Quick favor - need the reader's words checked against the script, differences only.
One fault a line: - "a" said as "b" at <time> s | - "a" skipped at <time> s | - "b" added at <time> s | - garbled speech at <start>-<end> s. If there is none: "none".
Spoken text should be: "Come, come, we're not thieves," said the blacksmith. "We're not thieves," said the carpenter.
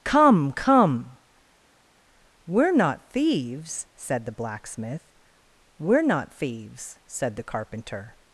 none